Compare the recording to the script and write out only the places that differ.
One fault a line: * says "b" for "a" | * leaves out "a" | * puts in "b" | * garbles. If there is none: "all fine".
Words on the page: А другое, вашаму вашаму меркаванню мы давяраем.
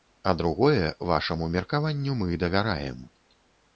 * leaves out "вашаму"